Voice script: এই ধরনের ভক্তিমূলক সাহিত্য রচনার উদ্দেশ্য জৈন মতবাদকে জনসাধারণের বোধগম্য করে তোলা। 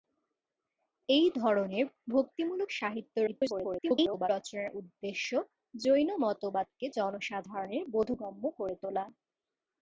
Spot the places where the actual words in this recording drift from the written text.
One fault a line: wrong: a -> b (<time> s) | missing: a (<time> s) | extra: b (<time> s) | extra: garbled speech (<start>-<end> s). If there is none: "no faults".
extra: garbled speech (3.3-4.3 s)